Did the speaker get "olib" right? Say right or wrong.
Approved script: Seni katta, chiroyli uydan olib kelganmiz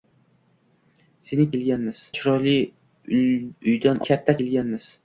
wrong